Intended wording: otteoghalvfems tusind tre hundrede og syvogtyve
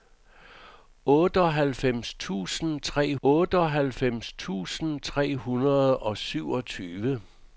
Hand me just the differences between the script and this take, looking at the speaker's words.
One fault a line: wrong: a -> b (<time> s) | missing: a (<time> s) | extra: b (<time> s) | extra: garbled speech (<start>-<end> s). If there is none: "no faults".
extra: otteoghalvfems tusind tre (3.2 s)